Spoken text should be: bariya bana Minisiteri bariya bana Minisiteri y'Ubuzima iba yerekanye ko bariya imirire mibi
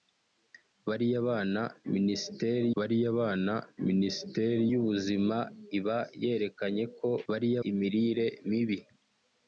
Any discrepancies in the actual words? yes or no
no